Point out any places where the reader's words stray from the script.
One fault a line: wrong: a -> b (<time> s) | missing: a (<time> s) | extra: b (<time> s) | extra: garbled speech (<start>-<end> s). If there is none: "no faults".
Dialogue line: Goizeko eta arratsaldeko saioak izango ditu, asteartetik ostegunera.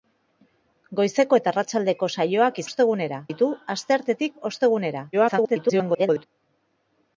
wrong: izango -> ostegunera (2.7 s)
extra: garbled speech (5.1-6.3 s)